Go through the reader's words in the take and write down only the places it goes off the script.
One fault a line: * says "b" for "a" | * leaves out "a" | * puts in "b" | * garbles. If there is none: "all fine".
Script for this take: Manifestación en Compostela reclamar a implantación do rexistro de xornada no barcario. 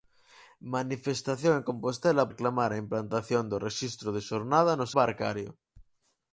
all fine